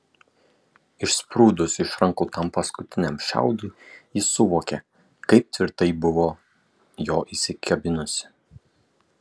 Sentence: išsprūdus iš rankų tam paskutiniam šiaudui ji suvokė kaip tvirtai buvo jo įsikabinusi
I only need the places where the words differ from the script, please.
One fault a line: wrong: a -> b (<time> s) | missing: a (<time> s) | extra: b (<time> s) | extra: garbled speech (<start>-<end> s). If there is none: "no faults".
no faults